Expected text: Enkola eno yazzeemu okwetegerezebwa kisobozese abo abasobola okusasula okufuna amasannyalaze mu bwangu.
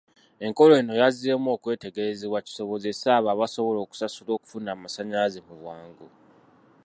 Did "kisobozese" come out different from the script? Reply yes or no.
no